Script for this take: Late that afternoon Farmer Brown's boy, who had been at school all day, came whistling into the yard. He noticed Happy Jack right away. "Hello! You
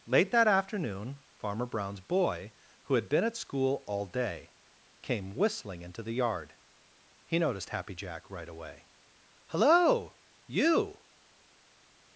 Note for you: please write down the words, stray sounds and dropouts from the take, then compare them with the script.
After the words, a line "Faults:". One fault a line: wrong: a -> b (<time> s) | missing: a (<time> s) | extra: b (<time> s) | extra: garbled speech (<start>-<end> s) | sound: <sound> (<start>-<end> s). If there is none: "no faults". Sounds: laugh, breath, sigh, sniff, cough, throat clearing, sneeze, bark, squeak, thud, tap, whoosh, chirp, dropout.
Late that afternoon Farmer Brown's boy, who had been at school all day, came whistling into the yard. He noticed Happy Jack right away. "Hello! You
Faults:
no faults